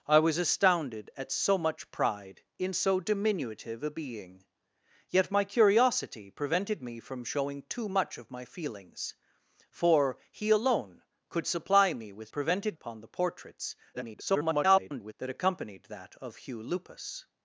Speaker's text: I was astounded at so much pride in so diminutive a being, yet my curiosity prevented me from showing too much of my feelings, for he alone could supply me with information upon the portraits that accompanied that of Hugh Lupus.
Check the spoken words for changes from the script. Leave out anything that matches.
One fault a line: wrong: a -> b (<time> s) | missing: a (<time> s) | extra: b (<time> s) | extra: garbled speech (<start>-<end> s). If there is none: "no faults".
wrong: information -> prevented (12.3 s)
extra: garbled speech (13.9-15.1 s)